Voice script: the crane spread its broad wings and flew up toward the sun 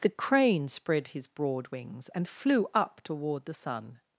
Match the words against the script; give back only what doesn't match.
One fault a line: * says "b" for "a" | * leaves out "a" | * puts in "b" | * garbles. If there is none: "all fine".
* says "his" for "its"